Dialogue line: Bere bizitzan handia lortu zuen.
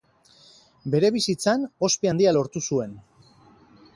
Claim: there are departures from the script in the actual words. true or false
true